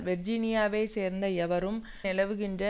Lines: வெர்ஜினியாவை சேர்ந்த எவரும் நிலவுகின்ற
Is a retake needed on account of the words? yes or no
no